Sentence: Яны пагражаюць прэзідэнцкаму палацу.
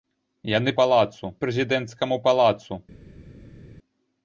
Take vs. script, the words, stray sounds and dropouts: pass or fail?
fail